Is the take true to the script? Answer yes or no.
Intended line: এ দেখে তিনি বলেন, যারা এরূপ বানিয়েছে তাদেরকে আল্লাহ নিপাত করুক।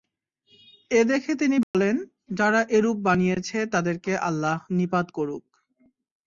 yes